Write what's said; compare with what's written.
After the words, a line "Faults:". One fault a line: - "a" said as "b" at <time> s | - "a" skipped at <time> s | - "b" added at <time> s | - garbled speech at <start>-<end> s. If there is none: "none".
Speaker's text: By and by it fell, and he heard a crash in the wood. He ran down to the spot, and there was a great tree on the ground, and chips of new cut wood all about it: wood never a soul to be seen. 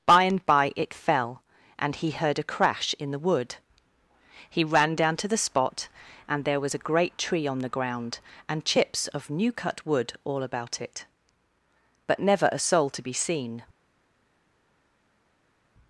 By and by it fell, and he heard a crash in the wood. He ran down to the spot, and there was a great tree on the ground, and chips of new cut wood all about it: but never a soul to be seen.
Faults:
- "wood" said as "but" at 12.1 s